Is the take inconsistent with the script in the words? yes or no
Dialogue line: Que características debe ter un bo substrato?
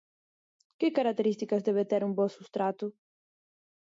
no